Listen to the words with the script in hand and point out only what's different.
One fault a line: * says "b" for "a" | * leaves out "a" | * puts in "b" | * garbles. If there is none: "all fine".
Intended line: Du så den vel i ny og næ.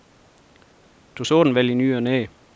all fine